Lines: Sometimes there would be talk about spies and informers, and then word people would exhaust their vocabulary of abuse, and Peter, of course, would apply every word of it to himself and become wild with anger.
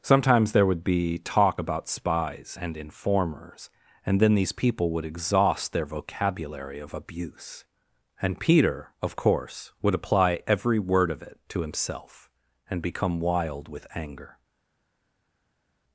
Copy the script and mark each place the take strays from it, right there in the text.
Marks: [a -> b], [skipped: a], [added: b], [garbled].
Sometimes there would be talk about spies and informers, and then [word -> these] people would exhaust their vocabulary of abuse, and Peter, of course, would apply every word of it to himself and become wild with anger.